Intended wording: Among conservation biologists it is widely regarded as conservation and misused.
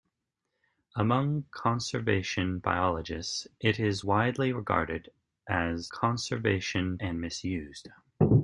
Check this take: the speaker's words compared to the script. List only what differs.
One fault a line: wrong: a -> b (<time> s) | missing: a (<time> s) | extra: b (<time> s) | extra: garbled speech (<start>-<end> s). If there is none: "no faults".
no faults